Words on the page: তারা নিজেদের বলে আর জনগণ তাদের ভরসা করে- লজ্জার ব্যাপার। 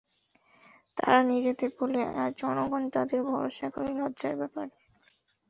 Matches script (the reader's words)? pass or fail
pass